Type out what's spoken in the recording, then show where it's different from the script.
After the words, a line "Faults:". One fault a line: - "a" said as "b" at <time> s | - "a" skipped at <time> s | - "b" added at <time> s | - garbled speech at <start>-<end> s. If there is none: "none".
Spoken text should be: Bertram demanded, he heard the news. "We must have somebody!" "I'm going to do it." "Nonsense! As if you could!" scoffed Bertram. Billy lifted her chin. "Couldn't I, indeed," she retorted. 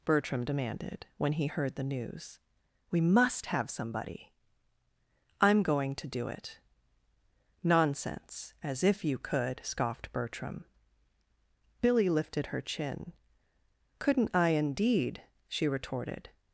Bertram demanded, when he heard the news. "We must have somebody!" "I'm going to do it." "Nonsense! As if you could!" scoffed Bertram. Billy lifted her chin. "Couldn't I, indeed," she retorted.
Faults:
- "when" added at 1.2 s